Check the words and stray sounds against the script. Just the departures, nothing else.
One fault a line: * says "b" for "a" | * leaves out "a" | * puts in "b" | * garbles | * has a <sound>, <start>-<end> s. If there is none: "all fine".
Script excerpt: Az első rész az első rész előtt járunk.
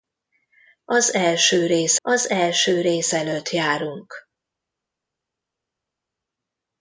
all fine